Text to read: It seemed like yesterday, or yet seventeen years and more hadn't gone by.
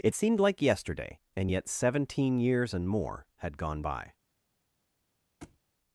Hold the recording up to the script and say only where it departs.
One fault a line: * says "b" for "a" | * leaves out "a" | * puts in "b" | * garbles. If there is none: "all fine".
* says "and" for "or"
* says "had" for "hadn't"